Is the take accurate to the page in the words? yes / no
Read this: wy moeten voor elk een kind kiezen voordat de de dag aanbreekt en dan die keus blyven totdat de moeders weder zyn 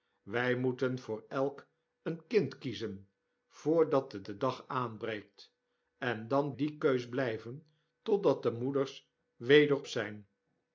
yes